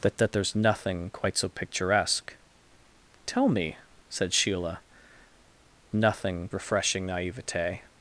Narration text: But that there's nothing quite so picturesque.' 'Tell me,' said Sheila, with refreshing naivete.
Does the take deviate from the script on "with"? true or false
true